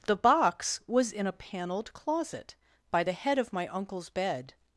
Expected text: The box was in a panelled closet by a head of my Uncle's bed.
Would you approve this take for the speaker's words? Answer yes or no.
no